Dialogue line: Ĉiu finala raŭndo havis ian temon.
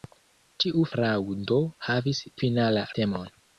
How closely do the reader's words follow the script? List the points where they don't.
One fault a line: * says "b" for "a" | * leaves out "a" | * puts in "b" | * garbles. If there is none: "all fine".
* leaves out "finala"
* says "finala" for "ian"